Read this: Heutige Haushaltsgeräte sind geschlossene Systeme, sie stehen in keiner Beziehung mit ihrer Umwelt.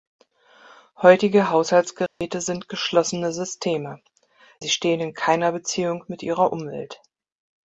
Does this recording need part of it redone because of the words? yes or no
no